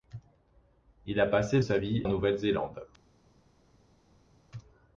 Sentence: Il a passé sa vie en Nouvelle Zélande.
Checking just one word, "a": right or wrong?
right